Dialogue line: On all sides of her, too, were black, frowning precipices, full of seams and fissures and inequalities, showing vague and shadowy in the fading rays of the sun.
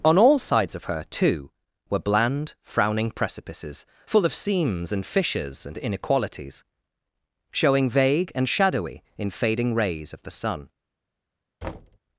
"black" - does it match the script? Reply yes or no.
no